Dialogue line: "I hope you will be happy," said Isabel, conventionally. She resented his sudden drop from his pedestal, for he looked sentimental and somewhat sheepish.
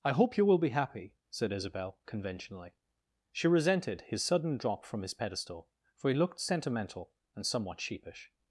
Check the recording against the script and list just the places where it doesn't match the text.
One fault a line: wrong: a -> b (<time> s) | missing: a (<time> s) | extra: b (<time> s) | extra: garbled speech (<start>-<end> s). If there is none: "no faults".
no faults